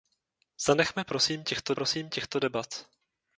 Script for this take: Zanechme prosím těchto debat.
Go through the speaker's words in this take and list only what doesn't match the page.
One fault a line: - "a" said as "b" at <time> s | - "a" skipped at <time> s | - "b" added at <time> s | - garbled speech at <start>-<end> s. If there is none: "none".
- "prosím těchto" added at 1.7 s